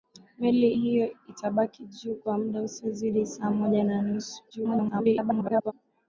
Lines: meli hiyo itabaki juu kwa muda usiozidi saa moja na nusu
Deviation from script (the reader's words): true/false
true